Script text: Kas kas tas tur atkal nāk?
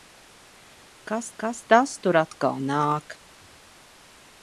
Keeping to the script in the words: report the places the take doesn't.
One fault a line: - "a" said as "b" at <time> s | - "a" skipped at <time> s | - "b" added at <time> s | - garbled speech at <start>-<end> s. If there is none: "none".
none